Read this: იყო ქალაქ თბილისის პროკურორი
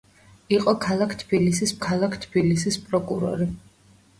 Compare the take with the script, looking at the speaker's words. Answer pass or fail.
fail